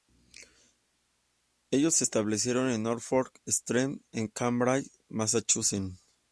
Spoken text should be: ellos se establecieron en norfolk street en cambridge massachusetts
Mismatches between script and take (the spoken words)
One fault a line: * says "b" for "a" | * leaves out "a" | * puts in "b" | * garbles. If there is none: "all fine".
all fine